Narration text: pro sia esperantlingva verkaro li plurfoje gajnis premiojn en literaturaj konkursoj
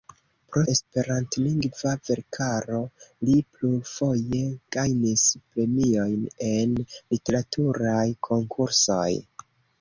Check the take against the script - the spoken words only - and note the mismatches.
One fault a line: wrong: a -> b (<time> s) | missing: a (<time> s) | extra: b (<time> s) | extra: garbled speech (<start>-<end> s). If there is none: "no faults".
missing: sia (0.6 s)